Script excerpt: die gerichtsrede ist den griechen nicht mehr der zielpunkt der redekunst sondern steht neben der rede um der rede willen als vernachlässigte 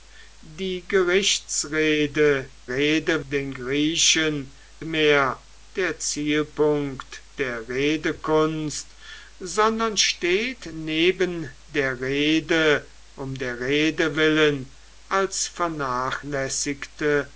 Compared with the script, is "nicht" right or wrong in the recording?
wrong